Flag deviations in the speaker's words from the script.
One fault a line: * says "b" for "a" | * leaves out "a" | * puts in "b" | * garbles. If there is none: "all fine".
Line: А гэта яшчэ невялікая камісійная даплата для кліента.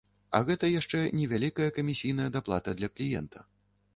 all fine